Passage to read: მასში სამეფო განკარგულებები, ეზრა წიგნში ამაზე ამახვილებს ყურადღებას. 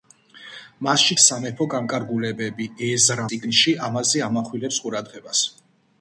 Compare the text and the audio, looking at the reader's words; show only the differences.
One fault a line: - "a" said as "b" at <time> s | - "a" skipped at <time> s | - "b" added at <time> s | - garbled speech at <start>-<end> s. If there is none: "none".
none